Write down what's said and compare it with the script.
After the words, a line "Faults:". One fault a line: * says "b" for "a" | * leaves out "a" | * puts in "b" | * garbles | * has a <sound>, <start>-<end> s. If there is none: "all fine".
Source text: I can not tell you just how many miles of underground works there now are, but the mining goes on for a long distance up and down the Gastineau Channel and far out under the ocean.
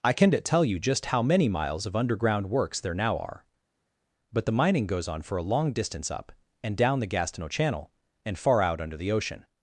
I can not tell you just how many miles of underground works there now are, but the mining goes on for a long distance up and down the Gastineau Channel and far out under the ocean.
Faults:
all fine